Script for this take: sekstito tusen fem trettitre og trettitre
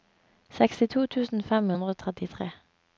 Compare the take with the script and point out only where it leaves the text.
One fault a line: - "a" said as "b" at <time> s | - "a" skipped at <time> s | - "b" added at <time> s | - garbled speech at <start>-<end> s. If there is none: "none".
- "trettitre" said as "hundre" at 1.7 s